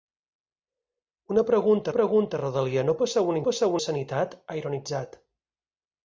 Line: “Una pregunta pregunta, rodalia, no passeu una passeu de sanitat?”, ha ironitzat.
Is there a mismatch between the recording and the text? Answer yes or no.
no